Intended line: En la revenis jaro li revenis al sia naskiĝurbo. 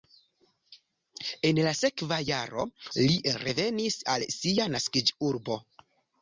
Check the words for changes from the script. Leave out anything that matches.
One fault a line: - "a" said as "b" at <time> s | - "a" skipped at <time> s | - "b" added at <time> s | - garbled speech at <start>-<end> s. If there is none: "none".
- "revenis" said as "sekva" at 1.8 s